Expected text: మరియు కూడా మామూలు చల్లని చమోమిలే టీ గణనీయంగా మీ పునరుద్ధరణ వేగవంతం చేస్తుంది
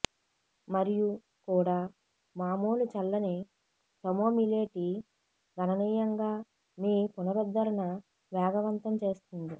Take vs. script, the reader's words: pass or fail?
pass